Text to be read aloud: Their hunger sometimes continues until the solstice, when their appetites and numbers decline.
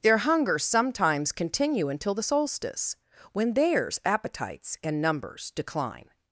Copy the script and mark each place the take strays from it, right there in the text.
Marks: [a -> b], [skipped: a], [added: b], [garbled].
Their hunger sometimes [continues -> continue] until the solstice, when [their -> theirs] appetites and numbers decline.